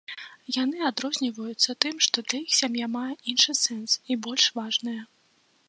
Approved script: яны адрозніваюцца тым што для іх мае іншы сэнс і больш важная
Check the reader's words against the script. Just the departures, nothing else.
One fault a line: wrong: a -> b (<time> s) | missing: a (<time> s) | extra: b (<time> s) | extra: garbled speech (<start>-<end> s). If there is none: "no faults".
extra: сям'я (2.6 s)